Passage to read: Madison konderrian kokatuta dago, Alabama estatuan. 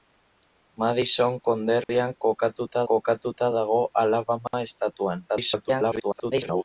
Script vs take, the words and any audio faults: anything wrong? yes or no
yes